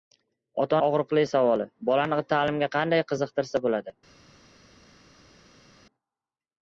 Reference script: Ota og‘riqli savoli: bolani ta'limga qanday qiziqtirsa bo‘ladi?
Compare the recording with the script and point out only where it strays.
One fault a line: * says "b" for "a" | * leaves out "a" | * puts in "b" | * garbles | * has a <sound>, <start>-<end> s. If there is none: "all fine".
all fine